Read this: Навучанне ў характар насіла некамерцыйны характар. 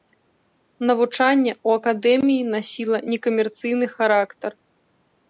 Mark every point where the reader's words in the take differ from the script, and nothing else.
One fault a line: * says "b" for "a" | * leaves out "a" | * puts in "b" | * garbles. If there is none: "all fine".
* says "акадэміі" for "характар"